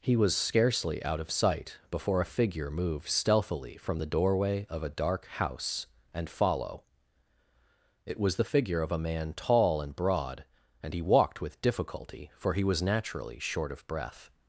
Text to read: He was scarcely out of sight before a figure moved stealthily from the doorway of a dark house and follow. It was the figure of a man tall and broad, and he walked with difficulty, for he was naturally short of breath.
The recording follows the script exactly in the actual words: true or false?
true